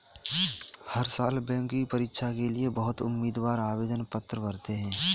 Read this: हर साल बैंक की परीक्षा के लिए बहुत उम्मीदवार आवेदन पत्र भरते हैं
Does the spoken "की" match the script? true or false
true